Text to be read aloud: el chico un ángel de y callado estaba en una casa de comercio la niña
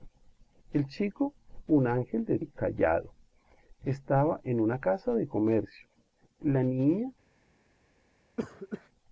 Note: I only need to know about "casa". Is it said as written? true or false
true